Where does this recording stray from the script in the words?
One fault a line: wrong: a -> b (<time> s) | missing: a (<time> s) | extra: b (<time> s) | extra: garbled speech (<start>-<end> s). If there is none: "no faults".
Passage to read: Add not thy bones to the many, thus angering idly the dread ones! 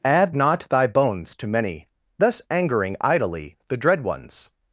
missing: the (1.5 s)